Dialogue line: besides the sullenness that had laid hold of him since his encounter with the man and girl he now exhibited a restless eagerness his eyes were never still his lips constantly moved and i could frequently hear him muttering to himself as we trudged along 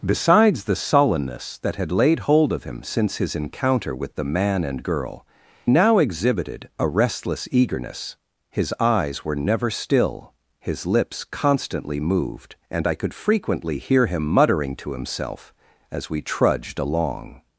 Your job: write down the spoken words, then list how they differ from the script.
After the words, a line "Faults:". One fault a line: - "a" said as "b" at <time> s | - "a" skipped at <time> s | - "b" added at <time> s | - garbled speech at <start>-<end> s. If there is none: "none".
besides the sullenness that had laid hold of him since his encounter with the man and girl now exhibited a restless eagerness his eyes were never still his lips constantly moved and i could frequently hear him muttering to himself as we trudged along
Faults:
- "he" skipped at 5.3 s